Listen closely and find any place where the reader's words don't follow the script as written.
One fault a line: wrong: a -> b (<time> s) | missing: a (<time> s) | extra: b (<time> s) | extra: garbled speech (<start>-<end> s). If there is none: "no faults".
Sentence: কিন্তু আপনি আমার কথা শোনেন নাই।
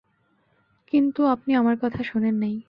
no faults